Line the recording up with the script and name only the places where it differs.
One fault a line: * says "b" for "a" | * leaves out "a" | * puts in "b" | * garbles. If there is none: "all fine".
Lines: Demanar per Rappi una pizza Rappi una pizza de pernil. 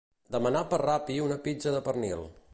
* leaves out "Rappi una pizza"